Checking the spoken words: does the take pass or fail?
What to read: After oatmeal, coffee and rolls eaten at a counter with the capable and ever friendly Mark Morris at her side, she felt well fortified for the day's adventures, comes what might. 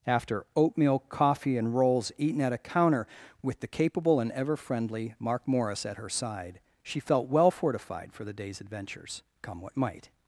fail